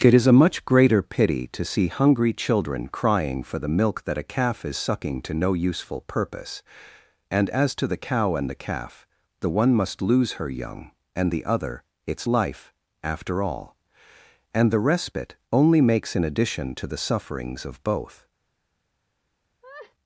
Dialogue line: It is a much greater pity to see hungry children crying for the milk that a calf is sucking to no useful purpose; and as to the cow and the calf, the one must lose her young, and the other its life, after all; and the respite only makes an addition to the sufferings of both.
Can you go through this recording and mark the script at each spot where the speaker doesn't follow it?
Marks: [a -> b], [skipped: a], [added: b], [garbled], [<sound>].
It is a much greater pity to see hungry children crying for the milk that a calf is sucking to no useful purpose; and as to the cow and the calf, the one must lose her young, and the other its life, after all; and the respite only makes an addition to the sufferings of both. [laugh]